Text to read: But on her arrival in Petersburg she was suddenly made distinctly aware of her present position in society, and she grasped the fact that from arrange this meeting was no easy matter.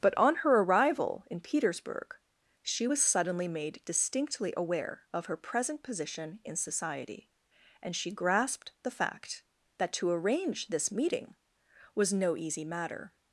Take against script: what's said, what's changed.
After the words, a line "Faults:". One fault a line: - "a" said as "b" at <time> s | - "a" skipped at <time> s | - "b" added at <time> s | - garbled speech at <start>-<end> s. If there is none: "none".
But on her arrival in Petersburg she was suddenly made distinctly aware of her present position in society, and she grasped the fact that to arrange this meeting was no easy matter.
Faults:
- "from" said as "to" at 9.9 s